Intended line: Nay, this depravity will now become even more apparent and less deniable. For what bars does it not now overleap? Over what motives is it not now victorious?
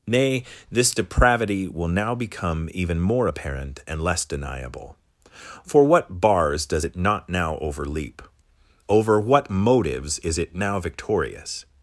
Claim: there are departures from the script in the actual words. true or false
true